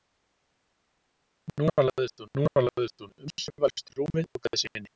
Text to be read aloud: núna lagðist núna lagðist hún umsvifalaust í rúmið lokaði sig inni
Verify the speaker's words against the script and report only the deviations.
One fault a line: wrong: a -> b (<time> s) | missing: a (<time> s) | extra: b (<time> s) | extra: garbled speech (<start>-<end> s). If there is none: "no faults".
no faults